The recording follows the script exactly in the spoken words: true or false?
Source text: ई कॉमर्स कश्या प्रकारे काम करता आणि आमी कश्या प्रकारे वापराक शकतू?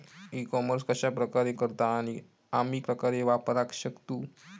false